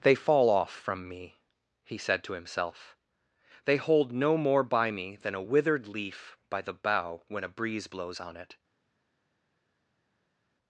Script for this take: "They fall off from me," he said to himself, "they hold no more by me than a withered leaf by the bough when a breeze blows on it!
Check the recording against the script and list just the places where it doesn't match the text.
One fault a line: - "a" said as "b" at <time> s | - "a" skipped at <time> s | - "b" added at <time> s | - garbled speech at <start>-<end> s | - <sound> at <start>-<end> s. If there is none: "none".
none